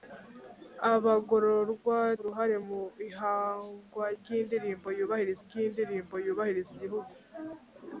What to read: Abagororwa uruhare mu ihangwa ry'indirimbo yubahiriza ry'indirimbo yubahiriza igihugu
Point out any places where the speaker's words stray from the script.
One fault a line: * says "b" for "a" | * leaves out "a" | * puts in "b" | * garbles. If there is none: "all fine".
all fine